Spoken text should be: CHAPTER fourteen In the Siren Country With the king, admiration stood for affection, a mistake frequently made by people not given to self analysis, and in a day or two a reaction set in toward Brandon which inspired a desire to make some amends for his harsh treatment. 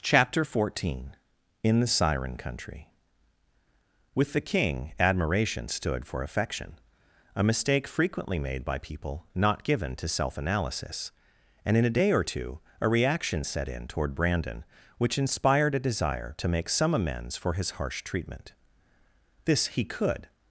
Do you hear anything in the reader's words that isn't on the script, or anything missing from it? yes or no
yes